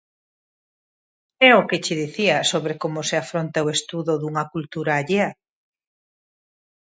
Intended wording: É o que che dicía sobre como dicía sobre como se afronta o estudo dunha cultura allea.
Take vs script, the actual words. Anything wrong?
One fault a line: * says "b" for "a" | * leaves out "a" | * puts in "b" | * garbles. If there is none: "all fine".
* leaves out "dicía sobre como"